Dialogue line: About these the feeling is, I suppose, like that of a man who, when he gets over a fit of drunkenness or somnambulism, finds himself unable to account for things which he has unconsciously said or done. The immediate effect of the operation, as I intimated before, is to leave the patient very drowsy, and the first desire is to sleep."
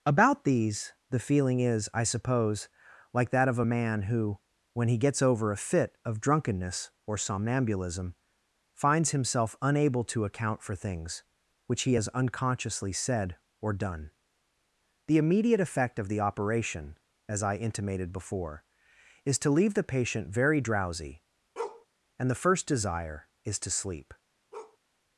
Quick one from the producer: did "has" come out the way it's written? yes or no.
yes